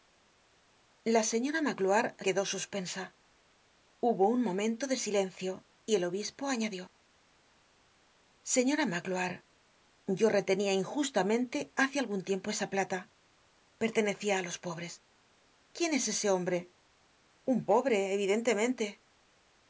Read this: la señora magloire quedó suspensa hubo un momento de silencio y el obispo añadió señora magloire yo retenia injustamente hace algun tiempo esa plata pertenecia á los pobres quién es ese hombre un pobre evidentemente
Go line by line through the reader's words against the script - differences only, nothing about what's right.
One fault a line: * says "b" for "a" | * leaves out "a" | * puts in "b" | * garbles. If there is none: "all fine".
all fine